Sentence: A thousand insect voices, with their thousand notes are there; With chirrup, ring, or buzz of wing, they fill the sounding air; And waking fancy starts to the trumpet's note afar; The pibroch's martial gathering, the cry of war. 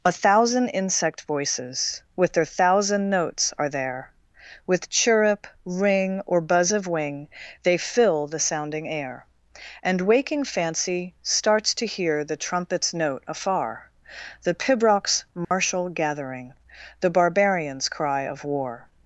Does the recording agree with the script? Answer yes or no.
no